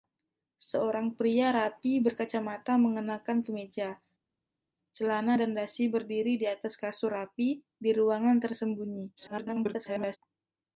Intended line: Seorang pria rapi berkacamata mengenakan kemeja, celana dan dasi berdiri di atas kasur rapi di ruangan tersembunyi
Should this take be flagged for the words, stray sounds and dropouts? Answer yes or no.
yes